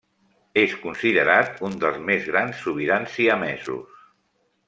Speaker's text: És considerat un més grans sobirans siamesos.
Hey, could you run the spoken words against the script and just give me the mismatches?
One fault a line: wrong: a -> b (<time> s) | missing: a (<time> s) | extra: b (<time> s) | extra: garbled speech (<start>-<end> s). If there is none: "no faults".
extra: dels (1.8 s)